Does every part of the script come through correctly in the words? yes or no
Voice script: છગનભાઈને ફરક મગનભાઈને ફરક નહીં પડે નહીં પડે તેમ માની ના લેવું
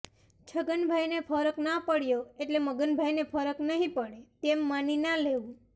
no